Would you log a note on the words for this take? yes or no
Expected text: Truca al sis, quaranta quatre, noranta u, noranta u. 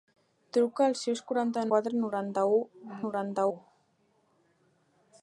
no